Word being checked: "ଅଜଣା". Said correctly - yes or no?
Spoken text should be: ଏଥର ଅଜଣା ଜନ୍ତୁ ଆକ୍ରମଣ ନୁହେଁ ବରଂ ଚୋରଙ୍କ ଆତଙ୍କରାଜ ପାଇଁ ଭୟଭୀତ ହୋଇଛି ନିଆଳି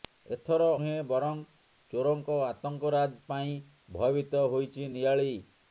no